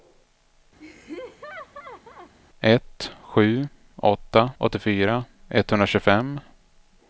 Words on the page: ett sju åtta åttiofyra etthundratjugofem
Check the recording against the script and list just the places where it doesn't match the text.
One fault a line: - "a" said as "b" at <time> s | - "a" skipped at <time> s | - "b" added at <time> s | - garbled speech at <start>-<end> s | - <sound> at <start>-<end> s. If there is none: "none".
- laugh at 0.8-2.3 s